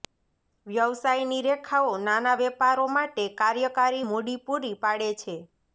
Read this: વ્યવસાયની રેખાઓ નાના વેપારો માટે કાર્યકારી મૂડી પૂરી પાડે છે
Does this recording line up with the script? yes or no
yes